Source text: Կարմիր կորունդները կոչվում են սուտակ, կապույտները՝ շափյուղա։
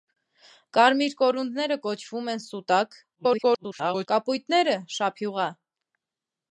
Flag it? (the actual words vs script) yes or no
yes